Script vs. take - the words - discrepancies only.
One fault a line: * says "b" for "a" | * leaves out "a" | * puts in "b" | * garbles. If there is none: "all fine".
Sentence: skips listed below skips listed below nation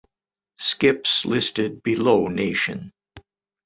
* leaves out "skips listed below"